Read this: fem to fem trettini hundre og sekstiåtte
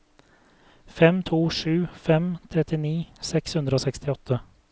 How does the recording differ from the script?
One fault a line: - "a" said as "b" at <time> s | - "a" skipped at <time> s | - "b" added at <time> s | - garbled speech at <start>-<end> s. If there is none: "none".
- "sju" added at 1.6 s
- "seks" added at 3.3 s